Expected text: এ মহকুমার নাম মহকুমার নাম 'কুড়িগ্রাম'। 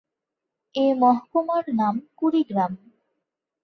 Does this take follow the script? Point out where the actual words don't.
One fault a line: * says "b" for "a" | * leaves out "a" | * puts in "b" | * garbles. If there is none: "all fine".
* leaves out "মহকুমার নাম"